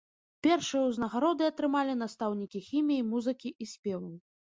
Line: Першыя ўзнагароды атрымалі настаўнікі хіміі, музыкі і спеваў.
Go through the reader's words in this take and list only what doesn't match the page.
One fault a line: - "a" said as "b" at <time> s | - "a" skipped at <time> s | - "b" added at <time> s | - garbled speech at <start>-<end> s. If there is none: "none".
none